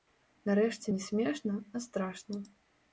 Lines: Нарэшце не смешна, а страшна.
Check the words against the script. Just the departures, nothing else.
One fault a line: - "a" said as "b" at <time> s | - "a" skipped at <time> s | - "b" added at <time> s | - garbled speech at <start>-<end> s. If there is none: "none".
none